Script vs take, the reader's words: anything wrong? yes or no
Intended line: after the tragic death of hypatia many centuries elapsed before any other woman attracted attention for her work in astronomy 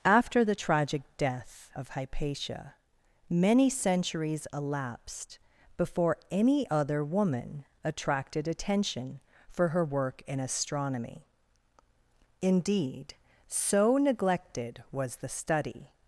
yes